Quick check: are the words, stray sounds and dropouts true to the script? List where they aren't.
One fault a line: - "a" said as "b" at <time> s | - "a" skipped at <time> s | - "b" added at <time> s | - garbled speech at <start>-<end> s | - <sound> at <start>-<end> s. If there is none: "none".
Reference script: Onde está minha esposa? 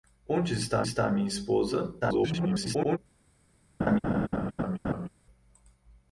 - "está" added at 0.8 s
- garbled speech at 2.0-3.0 s
- laugh at 3.8-5.1 s